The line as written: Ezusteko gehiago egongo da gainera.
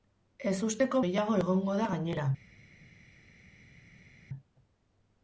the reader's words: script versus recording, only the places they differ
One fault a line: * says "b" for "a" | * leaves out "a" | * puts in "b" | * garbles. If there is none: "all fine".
all fine